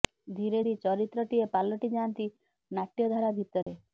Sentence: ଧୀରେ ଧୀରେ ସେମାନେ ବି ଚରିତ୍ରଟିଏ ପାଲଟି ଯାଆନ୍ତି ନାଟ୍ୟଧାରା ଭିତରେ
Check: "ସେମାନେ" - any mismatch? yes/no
yes